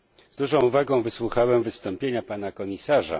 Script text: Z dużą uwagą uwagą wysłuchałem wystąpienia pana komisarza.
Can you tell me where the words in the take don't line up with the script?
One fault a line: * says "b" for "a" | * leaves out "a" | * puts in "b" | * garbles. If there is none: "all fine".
* leaves out "uwagą"